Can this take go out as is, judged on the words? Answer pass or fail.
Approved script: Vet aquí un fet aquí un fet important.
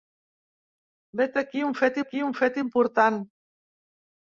pass